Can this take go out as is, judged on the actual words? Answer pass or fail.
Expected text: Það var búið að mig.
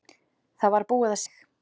pass